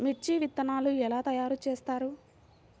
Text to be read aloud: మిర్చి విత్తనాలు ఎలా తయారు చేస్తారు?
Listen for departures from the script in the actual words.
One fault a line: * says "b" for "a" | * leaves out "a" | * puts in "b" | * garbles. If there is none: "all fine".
all fine